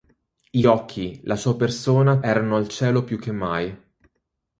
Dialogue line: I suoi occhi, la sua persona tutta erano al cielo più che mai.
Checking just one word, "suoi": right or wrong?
wrong